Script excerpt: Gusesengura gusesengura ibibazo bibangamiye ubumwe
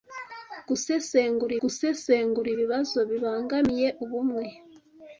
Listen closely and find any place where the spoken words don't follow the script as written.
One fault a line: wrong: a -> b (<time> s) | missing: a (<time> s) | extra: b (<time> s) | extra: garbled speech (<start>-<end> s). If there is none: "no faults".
no faults